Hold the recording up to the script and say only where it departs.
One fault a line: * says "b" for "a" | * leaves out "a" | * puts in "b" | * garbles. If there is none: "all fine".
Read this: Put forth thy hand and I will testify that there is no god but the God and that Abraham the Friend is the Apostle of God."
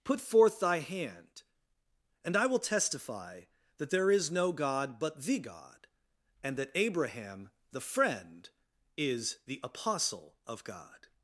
all fine